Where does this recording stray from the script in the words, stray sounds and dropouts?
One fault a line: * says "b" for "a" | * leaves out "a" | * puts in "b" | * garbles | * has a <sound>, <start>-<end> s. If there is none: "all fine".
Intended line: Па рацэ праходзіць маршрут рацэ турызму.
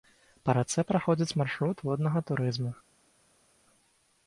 * says "воднага" for "рацэ"